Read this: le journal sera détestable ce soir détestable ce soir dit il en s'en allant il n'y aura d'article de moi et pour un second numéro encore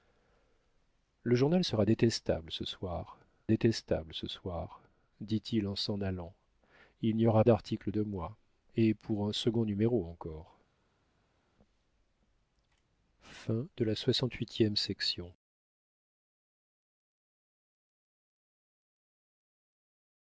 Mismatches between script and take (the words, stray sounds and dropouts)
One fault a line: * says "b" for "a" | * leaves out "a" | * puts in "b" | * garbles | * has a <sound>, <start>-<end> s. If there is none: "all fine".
all fine